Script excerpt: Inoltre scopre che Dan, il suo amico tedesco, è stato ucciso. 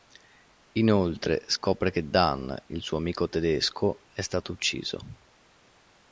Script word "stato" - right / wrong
right